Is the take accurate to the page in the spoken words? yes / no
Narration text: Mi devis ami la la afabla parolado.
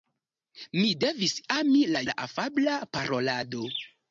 yes